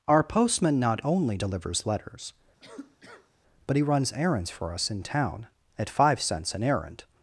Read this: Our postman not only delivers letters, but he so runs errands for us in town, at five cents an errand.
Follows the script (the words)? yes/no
no